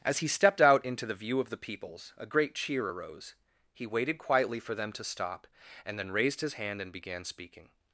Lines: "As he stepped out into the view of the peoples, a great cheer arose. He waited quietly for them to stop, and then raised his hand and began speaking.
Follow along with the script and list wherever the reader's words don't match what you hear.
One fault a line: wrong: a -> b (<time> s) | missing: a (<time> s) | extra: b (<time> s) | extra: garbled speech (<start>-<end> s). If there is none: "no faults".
no faults